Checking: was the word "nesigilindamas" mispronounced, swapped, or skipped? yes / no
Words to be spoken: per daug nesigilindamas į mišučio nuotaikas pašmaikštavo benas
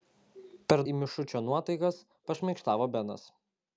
yes